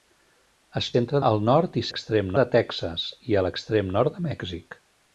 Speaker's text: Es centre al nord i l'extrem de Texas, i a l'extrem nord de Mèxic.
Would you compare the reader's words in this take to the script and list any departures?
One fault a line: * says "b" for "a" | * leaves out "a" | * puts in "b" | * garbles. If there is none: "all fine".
all fine